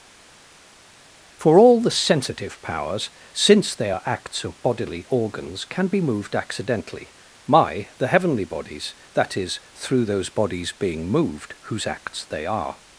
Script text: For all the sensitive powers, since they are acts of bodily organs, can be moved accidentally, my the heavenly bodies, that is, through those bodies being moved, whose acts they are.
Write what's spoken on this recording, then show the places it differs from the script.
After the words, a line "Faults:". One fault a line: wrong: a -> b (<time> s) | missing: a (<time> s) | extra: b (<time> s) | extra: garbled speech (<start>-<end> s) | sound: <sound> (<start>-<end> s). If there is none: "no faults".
For all the sensitive powers, since they are acts of bodily organs, can be moved accidentally, my the heavenly bodies, that is, through those bodies being moved, whose acts they are.
Faults:
no faults